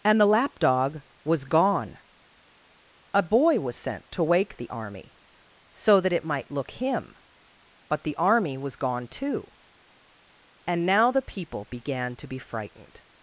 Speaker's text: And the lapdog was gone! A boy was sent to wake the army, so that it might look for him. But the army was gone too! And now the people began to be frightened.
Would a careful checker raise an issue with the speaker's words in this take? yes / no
yes